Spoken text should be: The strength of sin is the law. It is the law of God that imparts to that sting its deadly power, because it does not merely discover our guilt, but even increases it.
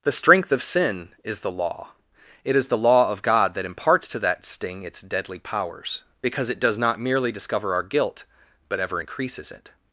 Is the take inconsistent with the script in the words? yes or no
yes